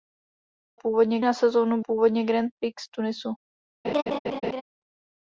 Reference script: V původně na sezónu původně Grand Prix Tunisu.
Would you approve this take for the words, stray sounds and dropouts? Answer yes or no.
no